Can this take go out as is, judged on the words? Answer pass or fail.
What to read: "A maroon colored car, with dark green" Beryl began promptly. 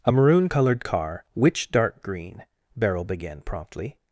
fail